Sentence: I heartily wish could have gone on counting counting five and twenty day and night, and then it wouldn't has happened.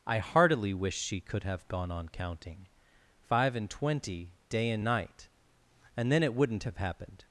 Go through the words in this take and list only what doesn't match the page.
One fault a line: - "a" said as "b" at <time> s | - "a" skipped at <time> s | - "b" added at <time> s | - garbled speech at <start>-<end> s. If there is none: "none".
- "she" added at 1.0 s
- "counting" skipped at 2.6 s
- "has" said as "have" at 6.6 s